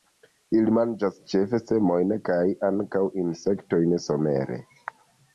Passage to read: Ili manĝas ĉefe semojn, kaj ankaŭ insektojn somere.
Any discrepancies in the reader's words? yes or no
no